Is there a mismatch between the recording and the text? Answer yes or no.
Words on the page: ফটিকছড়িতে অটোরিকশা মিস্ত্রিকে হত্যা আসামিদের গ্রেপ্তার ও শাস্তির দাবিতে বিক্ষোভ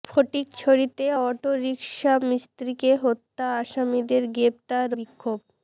yes